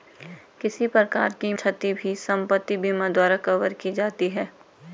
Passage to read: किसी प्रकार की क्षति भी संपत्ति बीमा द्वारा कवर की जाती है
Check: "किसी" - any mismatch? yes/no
no